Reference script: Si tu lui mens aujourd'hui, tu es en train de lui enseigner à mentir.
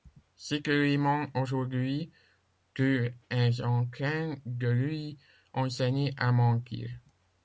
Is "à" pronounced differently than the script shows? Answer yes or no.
no